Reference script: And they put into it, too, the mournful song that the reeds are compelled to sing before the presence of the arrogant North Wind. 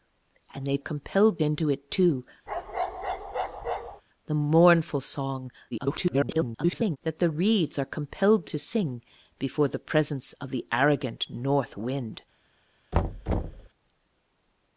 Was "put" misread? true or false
true